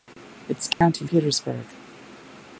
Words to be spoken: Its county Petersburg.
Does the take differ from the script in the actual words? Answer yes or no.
no